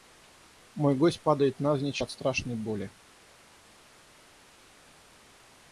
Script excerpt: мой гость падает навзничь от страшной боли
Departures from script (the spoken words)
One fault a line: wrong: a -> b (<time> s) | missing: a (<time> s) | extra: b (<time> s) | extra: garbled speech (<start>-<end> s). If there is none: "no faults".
no faults